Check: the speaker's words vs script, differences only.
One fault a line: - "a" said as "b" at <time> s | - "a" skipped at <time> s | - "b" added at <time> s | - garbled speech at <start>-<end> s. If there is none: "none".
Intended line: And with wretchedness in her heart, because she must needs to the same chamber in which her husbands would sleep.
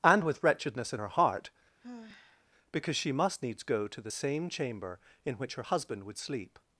- "go" added at 3.6 s
- "husbands" said as "husband" at 5.6 s